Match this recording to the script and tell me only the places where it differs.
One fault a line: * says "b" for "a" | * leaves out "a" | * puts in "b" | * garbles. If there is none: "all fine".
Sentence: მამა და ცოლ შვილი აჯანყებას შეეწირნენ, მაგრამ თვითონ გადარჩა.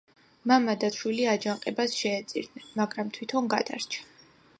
* leaves out "ცოლ"